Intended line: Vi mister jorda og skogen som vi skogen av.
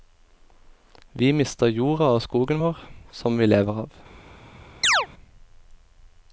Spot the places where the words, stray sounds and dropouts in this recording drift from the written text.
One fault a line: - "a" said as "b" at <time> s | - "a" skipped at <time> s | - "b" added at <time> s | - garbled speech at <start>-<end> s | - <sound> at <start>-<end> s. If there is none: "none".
- "vår" added at 2.6 s
- "skogen" said as "lever" at 3.5 s
- chirp at 4.8-5.1 s